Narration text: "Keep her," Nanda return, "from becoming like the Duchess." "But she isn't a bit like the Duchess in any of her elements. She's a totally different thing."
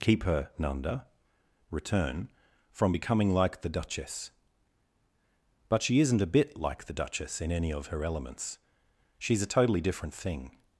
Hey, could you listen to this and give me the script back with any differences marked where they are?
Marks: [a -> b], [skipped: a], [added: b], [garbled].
"Keep her," Nanda return, "from becoming like the Duchess." "But she isn't a bit like the Duchess in any of her elements. She's a totally different thing."